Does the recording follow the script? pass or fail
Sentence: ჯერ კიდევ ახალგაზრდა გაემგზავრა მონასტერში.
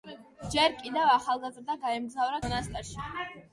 pass